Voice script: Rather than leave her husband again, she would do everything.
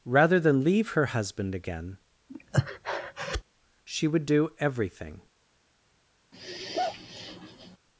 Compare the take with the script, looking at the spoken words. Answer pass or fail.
pass